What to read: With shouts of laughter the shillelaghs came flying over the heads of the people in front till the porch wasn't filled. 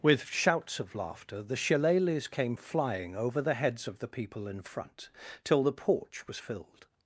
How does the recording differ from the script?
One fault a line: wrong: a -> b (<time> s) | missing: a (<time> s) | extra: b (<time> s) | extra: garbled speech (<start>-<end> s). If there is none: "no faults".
wrong: wasn't -> was (6.3 s)